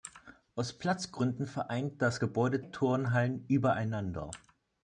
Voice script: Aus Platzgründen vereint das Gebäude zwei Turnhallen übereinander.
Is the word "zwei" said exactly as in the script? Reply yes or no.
no